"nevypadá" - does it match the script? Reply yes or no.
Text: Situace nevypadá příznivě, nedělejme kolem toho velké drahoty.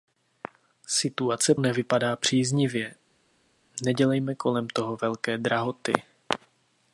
yes